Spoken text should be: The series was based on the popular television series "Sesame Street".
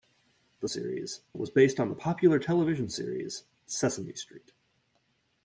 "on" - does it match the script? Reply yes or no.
yes